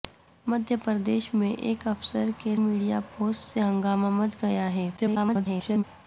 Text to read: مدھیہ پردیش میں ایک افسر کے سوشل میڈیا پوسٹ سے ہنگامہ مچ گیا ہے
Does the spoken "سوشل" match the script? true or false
false